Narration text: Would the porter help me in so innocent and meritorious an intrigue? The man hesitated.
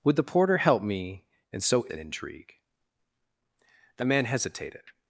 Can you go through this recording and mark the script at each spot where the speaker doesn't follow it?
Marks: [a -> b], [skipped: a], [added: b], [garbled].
Would the porter help me in so [skipped: innocent and meritorious] an intrigue? The man hesitated.